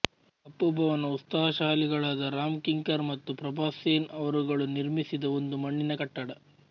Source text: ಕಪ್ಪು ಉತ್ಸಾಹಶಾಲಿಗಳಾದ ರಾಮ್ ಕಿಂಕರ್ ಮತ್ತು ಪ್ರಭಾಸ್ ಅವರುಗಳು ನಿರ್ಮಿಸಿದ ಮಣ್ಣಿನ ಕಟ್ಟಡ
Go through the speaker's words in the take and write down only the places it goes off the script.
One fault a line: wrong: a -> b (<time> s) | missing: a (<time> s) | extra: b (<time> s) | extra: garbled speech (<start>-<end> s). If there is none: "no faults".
extra: ಭವನ (0.8 s)
extra: ಸೇನ್ (3.8 s)
extra: ಒಂದು (5.4 s)